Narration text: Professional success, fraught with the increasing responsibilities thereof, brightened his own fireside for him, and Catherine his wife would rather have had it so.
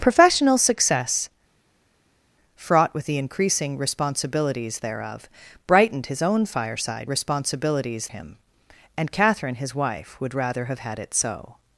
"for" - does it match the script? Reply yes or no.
no